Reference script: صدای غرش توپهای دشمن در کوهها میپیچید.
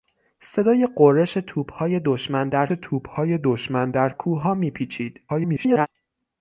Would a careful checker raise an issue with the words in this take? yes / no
yes